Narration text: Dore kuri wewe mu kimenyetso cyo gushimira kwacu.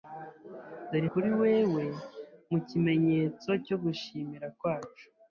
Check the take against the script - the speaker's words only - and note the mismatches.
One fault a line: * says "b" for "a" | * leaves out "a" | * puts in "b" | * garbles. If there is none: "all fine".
all fine